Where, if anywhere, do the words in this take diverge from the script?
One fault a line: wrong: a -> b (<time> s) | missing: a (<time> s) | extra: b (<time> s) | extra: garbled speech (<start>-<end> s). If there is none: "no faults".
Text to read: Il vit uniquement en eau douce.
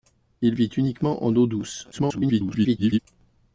extra: garbled speech (1.9-3.0 s)